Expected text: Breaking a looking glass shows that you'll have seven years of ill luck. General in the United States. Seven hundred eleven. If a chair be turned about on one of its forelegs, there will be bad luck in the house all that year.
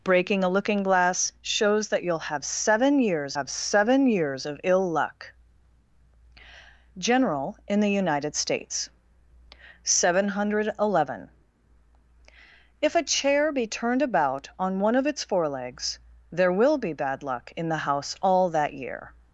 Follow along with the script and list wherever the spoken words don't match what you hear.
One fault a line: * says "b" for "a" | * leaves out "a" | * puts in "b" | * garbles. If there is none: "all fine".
* puts in "have seven years"